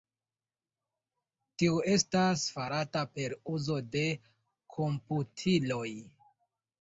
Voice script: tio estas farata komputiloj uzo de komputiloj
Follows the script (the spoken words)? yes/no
no